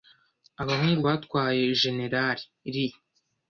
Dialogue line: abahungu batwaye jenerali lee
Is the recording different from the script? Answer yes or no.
no